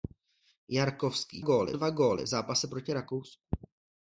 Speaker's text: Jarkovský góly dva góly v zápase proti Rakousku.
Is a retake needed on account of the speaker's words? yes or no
no